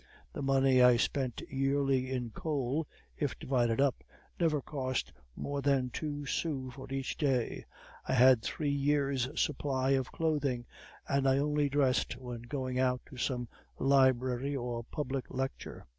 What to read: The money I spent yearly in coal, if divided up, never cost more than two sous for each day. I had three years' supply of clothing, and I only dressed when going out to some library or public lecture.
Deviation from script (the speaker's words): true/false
false